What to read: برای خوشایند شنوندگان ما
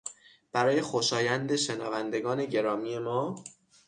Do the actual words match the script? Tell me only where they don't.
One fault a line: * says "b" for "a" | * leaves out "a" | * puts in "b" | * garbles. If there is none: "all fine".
* puts in "گرامی"